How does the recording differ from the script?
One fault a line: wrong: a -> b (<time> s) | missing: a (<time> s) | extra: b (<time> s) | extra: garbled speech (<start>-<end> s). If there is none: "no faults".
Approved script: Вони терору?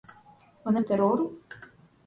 no faults